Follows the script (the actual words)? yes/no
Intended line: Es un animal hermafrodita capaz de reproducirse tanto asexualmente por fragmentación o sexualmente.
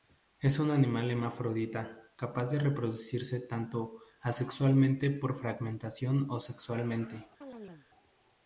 yes